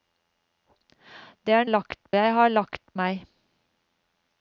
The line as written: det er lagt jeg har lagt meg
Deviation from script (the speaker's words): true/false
false